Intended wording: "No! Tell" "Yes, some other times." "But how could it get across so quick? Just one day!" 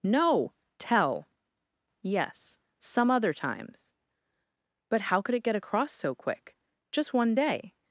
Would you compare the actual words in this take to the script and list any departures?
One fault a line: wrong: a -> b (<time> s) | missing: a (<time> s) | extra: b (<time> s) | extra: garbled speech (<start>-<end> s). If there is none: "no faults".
no faults